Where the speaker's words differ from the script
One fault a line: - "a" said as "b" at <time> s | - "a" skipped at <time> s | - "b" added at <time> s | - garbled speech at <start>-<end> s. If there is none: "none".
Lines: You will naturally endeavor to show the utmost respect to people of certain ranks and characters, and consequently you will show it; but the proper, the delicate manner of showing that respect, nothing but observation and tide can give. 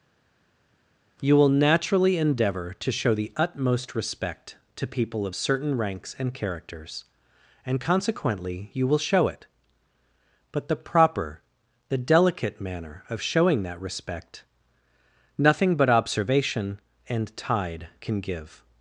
none